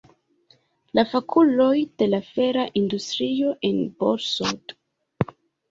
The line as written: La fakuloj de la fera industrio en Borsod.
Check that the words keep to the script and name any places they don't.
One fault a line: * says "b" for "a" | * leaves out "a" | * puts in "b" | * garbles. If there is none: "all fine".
all fine